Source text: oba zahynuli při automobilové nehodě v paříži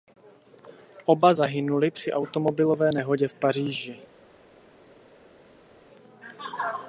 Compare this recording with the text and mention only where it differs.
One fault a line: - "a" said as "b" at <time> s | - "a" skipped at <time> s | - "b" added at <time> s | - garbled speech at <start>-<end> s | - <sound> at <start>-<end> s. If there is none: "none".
none